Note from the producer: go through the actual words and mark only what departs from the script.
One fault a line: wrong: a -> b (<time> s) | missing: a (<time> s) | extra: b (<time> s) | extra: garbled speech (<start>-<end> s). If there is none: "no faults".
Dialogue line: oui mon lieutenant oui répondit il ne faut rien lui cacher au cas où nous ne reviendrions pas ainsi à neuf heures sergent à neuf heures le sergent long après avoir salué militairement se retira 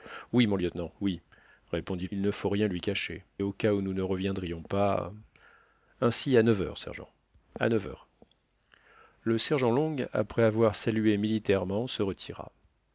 no faults